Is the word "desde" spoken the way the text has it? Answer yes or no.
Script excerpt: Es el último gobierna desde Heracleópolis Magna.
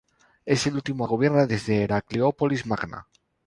yes